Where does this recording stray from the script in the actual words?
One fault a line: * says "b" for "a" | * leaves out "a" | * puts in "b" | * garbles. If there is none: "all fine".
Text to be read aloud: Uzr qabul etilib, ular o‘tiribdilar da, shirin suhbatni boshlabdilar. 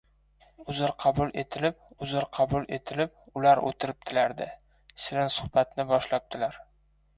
* puts in "uzr qabul etilib"